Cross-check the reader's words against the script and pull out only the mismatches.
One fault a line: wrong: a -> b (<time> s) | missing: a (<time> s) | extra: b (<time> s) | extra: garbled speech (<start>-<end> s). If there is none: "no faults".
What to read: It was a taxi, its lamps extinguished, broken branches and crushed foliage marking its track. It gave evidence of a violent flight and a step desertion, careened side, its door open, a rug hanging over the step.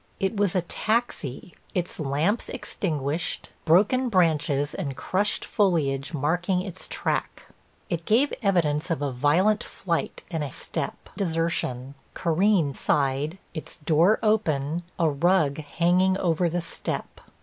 no faults